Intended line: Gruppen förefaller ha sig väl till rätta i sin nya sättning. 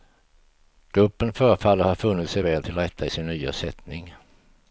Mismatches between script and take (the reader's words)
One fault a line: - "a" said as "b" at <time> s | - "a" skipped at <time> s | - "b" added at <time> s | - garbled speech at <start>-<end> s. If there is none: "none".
- "funnit" added at 1.9 s